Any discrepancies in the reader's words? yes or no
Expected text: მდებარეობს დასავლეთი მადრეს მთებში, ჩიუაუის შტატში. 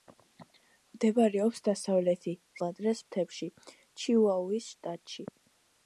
no